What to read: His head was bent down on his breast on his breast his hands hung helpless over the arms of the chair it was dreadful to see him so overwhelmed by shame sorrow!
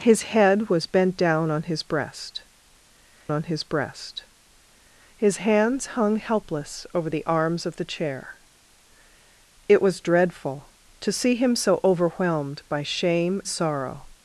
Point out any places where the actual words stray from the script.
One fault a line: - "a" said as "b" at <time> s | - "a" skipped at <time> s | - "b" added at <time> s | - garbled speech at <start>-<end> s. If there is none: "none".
none